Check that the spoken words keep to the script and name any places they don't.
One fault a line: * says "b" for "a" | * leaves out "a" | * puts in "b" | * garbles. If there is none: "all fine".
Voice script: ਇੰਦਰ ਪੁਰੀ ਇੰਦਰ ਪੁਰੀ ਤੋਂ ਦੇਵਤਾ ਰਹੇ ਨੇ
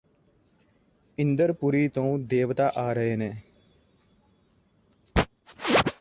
* leaves out "ਇੰਦਰ ਪੁਰੀ"
* puts in "ਆ"